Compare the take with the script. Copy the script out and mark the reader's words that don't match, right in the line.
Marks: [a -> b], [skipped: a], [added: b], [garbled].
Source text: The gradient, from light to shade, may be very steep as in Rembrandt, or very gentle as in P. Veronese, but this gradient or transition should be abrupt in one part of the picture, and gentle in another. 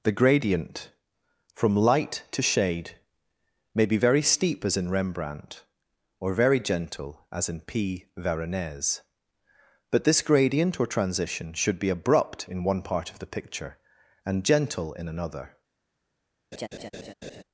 The gradient, from light to shade, may be very steep as in Rembrandt, or very gentle as in P. Veronese, but this gradient or transition should be abrupt in one part of the picture, and gentle in another.